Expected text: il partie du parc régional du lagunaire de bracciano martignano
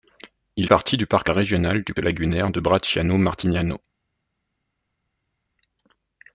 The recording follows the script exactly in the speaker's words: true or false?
true